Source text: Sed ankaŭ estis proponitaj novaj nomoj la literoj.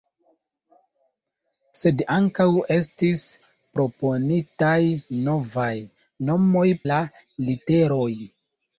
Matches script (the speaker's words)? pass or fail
pass